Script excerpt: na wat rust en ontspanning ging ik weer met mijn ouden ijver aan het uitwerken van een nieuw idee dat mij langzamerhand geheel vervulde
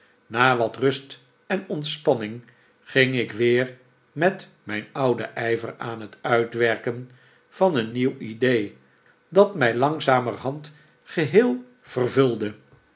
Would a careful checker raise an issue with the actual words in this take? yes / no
no